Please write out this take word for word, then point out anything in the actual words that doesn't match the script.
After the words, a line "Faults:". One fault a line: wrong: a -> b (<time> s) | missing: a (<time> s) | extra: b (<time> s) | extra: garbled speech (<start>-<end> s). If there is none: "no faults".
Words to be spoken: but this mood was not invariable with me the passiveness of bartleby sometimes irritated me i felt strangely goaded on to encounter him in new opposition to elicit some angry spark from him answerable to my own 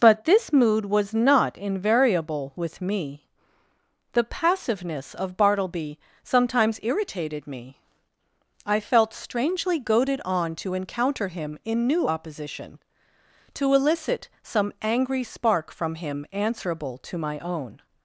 but this mood was not invariable with me the passiveness of bartleby sometimes irritated me i felt strangely goaded on to encounter him in new opposition to elicit some angry spark from him answerable to my own
Faults:
no faults